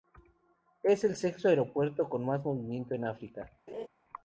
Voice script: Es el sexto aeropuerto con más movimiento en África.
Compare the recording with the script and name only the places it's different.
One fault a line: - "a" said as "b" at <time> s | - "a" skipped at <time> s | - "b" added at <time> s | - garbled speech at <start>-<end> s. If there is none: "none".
none